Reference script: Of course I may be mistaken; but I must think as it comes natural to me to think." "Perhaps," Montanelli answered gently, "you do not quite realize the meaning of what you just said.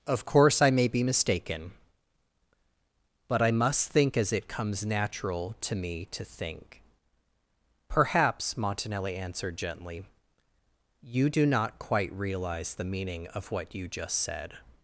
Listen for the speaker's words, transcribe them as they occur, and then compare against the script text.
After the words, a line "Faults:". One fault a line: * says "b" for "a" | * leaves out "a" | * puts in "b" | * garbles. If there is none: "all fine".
Of course I may be mistaken; but I must think as it comes natural to me to think." "Perhaps," Montanelli answered gently, "you do not quite realize the meaning of what you just said.
Faults:
all fine